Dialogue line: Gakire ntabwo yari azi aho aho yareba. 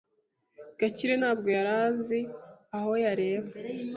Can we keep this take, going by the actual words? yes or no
no